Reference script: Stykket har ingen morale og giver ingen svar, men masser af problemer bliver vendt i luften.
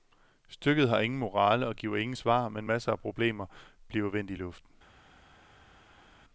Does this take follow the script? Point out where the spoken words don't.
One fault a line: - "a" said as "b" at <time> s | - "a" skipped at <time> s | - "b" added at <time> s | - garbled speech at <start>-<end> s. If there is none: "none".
none